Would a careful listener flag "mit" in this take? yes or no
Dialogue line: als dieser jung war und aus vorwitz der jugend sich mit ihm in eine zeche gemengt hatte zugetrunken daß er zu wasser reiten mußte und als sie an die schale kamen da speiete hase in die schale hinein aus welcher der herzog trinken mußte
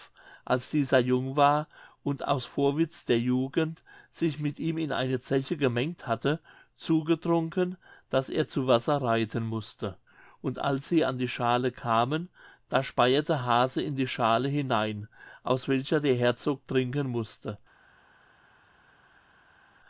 no